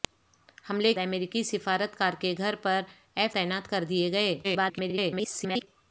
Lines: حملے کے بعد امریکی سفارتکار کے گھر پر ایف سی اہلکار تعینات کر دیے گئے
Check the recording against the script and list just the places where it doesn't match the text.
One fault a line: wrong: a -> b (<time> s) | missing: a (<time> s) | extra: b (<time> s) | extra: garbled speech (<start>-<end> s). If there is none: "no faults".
missing: کے بعد (0.9 s)
missing: سی اہلکار (3.4 s)
extra: garbled speech (4.4-5.7 s)